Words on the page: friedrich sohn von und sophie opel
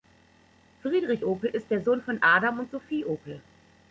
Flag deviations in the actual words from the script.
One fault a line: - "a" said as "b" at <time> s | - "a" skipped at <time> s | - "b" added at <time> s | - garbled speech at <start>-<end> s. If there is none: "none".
- "opel ist der" added at 1.3 s
- "adam" added at 2.2 s